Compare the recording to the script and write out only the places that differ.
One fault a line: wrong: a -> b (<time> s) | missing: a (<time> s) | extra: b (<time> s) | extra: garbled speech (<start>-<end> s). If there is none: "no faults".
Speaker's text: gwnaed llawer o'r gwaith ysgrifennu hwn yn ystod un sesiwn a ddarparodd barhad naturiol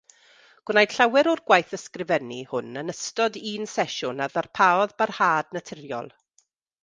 no faults